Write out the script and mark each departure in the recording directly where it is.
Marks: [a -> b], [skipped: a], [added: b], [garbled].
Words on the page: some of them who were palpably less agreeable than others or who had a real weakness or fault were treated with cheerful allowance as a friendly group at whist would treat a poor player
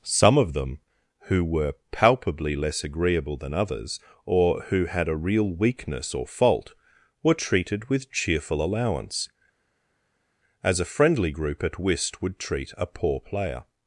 some of them who were palpably less agreeable than others or who had a real weakness or fault were treated with cheerful allowance as a friendly group at whist would treat a poor player